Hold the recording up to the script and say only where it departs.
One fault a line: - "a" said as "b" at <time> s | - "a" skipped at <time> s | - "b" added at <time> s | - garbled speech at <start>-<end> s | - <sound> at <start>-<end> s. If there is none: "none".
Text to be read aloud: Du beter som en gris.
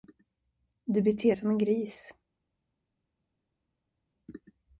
none